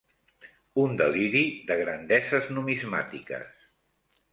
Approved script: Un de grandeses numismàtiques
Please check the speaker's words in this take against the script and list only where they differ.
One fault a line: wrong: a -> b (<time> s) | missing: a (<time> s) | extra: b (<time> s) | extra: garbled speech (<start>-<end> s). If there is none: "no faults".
extra: deliri (1.0 s)